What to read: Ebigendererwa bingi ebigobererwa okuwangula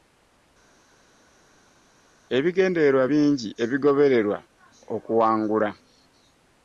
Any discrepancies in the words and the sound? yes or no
no